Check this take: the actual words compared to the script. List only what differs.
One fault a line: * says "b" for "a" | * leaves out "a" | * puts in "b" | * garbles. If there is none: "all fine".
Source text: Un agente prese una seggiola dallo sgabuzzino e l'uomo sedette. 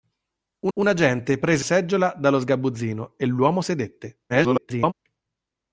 * puts in "un"
* leaves out "una"
* garbles